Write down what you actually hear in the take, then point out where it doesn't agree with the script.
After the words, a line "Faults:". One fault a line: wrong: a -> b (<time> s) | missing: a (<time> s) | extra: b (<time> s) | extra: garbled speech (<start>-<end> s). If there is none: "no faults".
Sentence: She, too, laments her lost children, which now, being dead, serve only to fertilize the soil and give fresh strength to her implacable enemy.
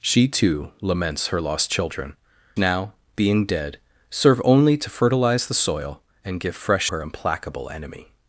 She, too, laments her lost children, now, being dead, serve only to fertilize the soil and give fresh her implacable enemy.
Faults:
missing: which (2.1 s)
missing: strength to (6.9 s)